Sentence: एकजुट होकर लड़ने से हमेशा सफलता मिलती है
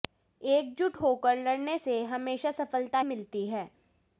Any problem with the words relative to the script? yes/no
no